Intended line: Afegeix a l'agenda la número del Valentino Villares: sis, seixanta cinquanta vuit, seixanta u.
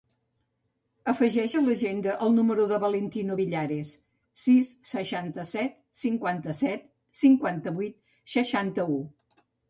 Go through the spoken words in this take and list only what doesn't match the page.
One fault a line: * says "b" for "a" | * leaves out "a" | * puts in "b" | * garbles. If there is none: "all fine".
* says "el" for "la"
* puts in "set cinquanta set"